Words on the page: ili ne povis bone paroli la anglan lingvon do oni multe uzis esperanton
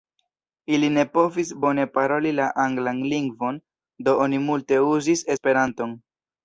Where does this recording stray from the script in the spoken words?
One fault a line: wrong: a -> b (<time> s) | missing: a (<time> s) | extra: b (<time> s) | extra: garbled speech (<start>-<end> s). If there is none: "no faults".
no faults